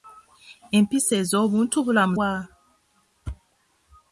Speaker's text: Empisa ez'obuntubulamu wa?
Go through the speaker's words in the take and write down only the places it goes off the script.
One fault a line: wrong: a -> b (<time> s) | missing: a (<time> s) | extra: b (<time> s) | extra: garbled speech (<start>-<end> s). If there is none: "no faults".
no faults